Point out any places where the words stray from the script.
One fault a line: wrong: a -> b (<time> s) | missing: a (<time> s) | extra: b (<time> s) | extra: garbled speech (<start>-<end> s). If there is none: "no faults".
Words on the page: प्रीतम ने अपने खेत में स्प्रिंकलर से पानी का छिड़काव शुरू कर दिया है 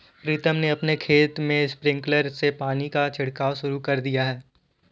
no faults